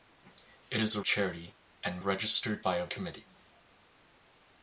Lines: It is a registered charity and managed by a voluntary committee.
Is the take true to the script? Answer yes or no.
no